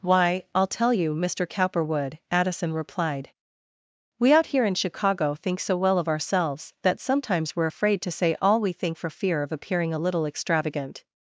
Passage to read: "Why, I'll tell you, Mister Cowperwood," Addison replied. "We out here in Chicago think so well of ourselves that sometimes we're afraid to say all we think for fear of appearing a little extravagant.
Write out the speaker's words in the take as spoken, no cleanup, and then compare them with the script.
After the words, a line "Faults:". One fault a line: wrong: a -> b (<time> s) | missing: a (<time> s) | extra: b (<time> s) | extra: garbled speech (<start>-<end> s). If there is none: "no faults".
"Why, I'll tell you, Mister Cowperwood," Addison replied. "We out here in Chicago think so well of ourselves that sometimes we're afraid to say all we think for fear of appearing a little extravagant.
Faults:
no faults